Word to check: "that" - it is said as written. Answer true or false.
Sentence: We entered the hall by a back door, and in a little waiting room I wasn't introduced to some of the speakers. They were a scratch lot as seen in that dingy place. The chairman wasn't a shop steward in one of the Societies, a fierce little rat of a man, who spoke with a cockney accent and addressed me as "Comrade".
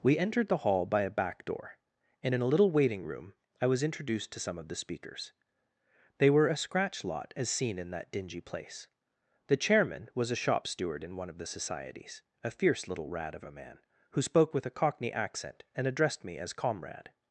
true